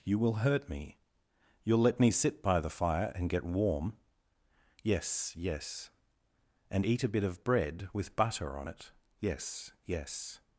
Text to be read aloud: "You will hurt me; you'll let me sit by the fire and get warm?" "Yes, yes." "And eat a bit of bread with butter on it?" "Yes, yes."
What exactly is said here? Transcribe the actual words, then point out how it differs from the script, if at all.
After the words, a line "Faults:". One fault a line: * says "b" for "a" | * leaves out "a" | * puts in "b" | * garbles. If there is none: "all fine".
"You will hurt me; you'll let me sit by the fire and get warm?" "Yes, yes." "And eat a bit of bread with butter on it?" "Yes, yes."
Faults:
all fine